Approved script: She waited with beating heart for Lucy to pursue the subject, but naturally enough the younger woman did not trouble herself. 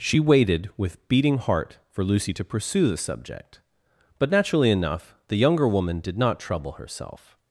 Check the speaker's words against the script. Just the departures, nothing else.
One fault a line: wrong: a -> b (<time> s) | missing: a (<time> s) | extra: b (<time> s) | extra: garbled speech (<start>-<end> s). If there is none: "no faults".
no faults